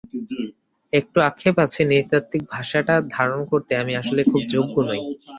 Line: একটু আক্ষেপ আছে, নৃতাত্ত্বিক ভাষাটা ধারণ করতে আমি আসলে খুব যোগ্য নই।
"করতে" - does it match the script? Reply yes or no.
yes